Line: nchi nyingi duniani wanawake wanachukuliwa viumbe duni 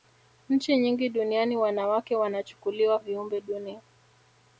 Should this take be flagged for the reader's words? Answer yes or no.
no